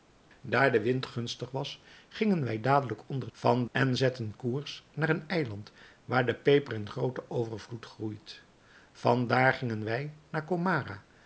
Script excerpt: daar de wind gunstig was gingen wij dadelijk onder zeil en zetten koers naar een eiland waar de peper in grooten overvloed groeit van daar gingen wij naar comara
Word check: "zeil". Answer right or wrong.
wrong